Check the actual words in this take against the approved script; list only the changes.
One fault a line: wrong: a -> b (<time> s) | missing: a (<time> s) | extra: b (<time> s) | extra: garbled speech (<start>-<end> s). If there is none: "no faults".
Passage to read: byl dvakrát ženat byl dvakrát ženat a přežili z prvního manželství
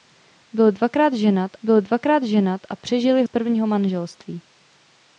no faults